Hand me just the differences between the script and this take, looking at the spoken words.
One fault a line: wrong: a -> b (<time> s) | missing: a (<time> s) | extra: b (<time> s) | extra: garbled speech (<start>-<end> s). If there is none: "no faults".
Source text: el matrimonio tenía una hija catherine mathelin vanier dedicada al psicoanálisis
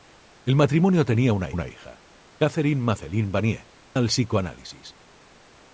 extra: una (1.5 s)
missing: dedicada (3.7 s)